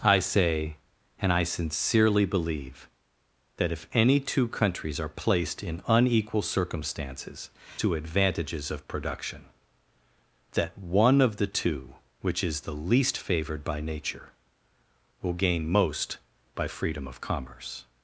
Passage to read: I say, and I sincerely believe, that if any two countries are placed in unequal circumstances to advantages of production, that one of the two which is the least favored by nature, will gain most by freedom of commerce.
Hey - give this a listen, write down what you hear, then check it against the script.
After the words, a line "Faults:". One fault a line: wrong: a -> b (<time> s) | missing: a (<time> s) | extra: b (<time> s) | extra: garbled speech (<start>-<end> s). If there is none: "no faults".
I say, and I sincerely believe, that if any two countries are placed in unequal circumstances to advantages of production, that one of the two which is the least favored by nature, will gain most by freedom of commerce.
Faults:
no faults